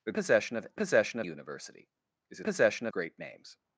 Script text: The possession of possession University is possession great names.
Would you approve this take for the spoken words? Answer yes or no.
yes